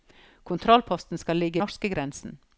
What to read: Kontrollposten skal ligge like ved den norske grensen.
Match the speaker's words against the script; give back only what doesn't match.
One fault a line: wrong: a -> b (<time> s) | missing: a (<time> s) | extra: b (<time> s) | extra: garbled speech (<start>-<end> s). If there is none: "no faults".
missing: like ved den (1.6 s)